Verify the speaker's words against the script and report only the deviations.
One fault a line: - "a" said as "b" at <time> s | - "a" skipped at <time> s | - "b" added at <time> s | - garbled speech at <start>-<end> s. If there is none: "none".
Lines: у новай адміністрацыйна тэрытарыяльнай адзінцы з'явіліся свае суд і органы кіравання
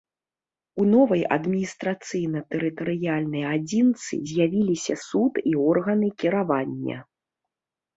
- "свае" skipped at 4.9 s